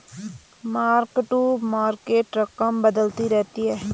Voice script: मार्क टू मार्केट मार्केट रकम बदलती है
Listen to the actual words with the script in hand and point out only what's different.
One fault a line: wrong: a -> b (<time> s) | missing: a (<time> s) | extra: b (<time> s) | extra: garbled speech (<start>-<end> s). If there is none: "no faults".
missing: मार्केट (2.4 s)
extra: रहती (3.3 s)